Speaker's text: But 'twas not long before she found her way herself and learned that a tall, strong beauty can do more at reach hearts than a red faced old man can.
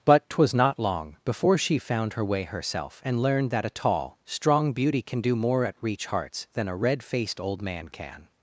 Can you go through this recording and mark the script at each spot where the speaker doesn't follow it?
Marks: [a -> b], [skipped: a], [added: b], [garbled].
But 'twas not long before she found her way herself and learned that a tall, strong beauty can do more at reach hearts than a red faced old man can.